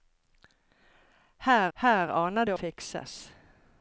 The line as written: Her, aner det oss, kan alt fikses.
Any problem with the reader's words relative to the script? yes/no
yes